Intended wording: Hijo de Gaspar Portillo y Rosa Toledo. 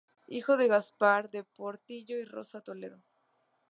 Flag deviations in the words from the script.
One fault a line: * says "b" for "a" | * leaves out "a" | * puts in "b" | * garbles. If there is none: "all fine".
* puts in "de"